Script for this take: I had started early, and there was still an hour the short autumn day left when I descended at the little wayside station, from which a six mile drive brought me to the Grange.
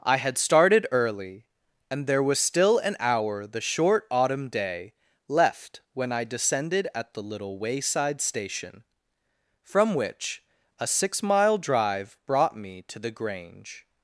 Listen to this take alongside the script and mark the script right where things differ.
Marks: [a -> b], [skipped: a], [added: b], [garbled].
I had started early, and there was still an hour the short autumn day left when I descended at the little wayside station, from which a six mile drive brought me to the Grange.